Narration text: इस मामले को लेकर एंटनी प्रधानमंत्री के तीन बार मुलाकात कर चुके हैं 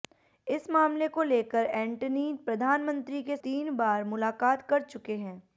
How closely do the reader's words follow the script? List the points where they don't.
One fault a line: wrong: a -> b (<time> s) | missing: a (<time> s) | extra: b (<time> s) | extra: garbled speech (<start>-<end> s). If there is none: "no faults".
no faults